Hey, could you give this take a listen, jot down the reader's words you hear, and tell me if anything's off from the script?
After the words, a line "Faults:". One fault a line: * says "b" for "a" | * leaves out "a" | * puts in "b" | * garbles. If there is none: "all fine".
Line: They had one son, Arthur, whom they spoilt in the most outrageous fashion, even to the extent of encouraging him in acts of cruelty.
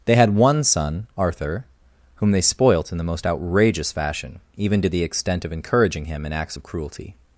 They had one son, Arthur, whom they spoilt in the most outrageous fashion, even to the extent of encouraging him in acts of cruelty.
Faults:
all fine